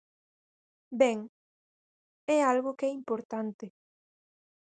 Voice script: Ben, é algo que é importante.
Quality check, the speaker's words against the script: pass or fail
pass